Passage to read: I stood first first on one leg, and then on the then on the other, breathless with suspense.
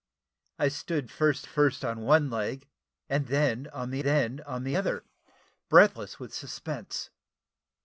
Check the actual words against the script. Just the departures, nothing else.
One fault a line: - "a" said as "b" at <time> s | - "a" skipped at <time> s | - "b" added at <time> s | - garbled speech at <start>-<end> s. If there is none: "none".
none